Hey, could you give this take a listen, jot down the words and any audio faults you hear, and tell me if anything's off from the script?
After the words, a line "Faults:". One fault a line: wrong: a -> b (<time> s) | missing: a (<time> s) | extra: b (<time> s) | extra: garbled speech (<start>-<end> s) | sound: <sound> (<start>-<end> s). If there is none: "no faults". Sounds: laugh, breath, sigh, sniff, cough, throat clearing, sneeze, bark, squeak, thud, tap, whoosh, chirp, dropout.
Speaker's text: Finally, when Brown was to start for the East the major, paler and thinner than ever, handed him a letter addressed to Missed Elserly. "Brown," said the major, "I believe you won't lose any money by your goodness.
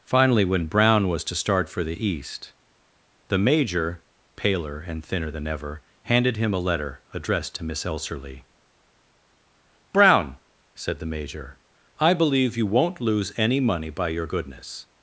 Finally, when Brown was to start for the East the major, paler and thinner than ever, handed him a letter addressed to Miss Elserly. "Brown," said the major, "I believe you won't lose any money by your goodness.
Faults:
wrong: Missed -> Miss (7.6 s)